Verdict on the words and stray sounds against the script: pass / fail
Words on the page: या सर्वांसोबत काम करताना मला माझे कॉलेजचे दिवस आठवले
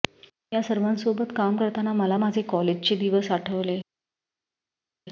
pass